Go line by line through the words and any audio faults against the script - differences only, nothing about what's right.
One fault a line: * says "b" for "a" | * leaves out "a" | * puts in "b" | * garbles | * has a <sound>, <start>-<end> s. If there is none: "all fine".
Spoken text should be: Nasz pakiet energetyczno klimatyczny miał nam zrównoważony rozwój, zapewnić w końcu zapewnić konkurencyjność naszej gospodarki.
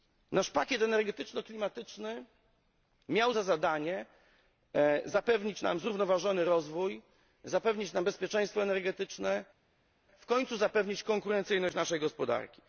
* puts in "za zadanie zapewnić"
* puts in "nam bezpieczeństwo energetyczne"